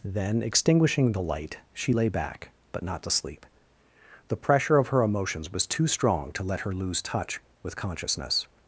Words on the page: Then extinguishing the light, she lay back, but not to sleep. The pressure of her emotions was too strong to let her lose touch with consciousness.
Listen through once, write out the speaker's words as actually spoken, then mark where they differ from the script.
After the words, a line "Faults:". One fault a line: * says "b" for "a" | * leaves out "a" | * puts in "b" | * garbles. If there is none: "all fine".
Then extinguishing the light, she lay back, but not to sleep. The pressure of her emotions was too strong to let her lose touch with consciousness.
Faults:
all fine